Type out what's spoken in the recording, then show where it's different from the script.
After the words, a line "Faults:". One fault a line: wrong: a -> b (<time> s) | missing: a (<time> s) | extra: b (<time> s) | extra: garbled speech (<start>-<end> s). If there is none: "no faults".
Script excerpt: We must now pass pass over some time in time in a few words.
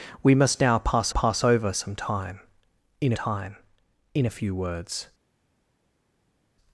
We must now pass pass over some time in time in a few words.
Faults:
no faults